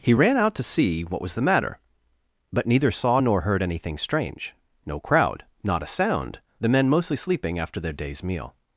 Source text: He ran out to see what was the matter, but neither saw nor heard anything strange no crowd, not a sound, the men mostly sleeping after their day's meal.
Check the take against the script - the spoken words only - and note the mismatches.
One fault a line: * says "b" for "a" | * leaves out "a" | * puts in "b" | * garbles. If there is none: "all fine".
all fine